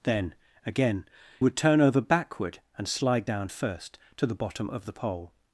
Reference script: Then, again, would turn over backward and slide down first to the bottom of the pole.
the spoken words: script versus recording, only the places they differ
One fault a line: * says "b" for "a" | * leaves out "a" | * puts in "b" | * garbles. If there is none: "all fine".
all fine